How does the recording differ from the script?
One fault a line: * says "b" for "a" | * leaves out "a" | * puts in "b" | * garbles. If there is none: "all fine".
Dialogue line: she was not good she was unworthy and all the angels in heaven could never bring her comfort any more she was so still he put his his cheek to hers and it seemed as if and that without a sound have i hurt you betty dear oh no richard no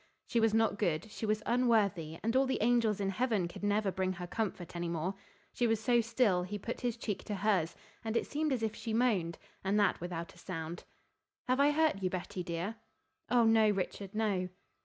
* leaves out "his"
* puts in "she moaned"